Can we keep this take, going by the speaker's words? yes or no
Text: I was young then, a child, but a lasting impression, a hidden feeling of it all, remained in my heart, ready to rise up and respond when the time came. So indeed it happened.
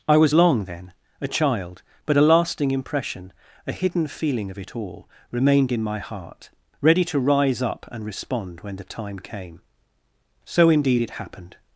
no